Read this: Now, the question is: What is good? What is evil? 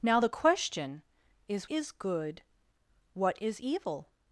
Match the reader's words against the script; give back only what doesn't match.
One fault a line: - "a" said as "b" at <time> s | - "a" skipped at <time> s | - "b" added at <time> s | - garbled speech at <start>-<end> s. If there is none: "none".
- "What" skipped at 1.7 s